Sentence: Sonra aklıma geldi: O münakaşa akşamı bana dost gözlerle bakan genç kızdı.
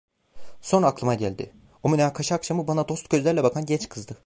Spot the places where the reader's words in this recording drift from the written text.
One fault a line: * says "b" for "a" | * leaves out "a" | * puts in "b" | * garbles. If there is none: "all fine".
all fine